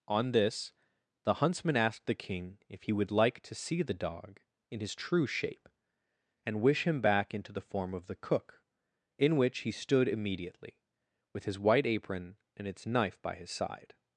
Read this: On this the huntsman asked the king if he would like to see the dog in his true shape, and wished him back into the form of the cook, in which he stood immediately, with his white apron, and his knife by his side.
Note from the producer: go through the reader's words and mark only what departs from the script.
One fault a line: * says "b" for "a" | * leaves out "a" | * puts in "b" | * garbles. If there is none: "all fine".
* says "wish" for "wished"
* says "its" for "his"